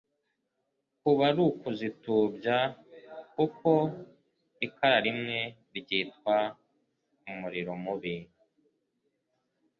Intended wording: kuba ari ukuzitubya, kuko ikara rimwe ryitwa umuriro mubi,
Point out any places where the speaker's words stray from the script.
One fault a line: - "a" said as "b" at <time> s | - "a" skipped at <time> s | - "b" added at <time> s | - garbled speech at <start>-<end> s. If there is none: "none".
none